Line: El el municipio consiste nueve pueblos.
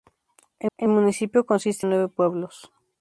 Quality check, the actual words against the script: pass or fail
pass